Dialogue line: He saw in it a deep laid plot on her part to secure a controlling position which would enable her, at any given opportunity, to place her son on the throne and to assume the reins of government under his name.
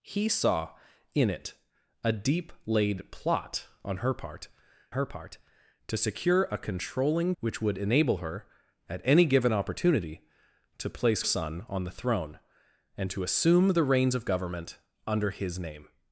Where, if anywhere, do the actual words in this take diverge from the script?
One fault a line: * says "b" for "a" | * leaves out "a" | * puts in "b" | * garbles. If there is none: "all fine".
* puts in "her part"
* leaves out "position"
* leaves out "her"